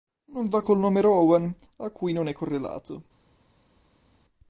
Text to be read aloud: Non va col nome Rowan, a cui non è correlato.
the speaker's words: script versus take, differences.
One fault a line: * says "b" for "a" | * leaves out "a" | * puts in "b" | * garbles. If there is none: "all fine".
all fine